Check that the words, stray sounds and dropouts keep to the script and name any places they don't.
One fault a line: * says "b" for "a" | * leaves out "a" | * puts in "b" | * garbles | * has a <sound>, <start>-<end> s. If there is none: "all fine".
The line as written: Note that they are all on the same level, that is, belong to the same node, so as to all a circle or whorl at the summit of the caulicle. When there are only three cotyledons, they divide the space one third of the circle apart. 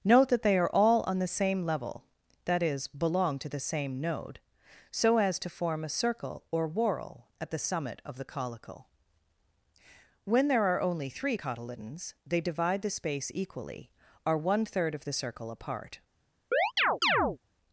* says "form" for "all"
* puts in "equally are"
* has a chirp, 16.5-17.4 s